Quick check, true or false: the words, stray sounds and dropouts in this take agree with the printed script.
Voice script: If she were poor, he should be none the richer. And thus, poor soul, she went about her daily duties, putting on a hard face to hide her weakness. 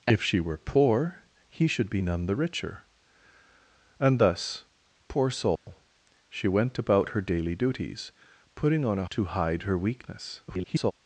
false